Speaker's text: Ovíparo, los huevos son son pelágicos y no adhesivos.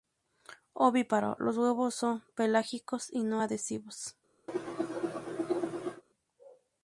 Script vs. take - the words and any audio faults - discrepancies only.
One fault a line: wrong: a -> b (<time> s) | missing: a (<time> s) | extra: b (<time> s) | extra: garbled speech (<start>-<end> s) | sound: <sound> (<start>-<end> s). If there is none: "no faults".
missing: son (2.2 s)
sound: cough (4.5-6.0 s)